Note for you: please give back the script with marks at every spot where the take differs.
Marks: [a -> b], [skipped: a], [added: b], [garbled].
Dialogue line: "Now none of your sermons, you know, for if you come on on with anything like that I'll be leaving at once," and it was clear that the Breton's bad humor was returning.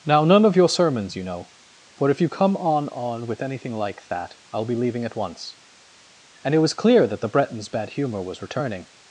"Now none of your sermons, you know, for if you come on on with anything like that I'll be leaving at once," and it was clear that the Breton's bad humor was returning.